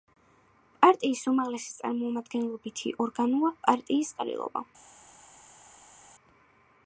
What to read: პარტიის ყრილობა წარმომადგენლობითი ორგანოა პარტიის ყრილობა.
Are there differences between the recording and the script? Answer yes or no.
yes